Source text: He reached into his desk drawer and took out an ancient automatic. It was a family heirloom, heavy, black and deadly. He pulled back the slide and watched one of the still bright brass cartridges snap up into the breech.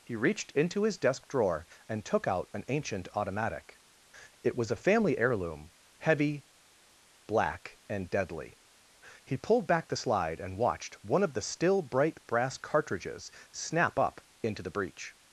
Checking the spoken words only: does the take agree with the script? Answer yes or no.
yes